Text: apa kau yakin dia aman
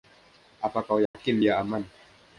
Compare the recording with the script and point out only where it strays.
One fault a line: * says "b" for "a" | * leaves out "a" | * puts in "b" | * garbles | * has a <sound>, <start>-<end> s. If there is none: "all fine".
* has a dropout, 1.1-1.1 s